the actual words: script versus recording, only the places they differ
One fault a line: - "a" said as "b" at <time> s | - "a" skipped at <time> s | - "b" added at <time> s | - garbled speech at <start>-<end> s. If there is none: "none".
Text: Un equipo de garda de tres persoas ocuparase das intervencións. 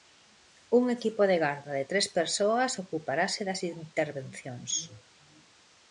none